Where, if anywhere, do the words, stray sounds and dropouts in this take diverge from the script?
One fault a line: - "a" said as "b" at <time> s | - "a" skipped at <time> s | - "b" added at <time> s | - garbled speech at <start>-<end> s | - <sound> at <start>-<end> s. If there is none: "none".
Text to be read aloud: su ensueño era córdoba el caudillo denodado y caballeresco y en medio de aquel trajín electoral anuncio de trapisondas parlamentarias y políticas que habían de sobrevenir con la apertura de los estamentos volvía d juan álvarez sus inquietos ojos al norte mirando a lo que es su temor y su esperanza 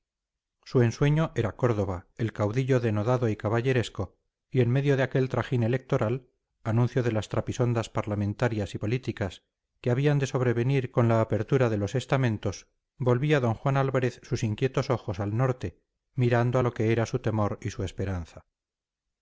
- "las" added at 7.1 s
- "es" said as "era" at 16.9 s